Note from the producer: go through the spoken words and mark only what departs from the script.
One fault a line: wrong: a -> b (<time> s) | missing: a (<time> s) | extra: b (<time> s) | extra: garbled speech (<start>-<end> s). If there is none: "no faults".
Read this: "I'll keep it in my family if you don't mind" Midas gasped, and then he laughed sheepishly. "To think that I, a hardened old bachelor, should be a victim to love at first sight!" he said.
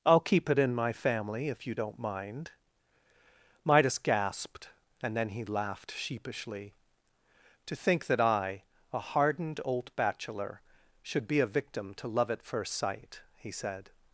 no faults